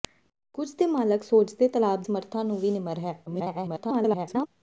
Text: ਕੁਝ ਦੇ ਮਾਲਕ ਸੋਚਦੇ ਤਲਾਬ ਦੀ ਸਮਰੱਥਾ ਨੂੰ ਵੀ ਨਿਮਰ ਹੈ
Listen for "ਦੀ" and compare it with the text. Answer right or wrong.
wrong